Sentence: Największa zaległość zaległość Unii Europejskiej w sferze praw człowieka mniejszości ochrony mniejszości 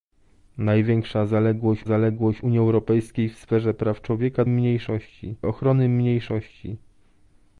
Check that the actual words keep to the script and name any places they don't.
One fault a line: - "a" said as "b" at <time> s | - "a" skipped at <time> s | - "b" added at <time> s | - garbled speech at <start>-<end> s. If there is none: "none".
none